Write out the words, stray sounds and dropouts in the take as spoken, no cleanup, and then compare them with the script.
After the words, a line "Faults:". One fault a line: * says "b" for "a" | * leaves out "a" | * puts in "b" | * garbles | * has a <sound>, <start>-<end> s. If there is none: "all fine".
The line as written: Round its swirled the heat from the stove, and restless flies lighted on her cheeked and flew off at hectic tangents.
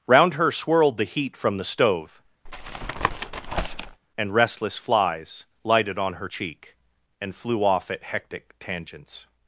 Round her swirled the heat from the stove, and restless flies lighted on her cheek and flew off at hectic tangents.
Faults:
* says "her" for "its"
* has a tap, 2.5-4.0 s
* says "cheek" for "cheeked"